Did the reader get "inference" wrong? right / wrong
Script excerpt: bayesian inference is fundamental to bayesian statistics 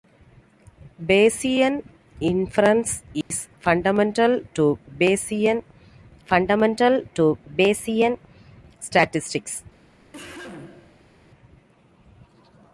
right